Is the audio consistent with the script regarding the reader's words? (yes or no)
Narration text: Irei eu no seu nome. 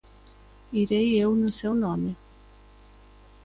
yes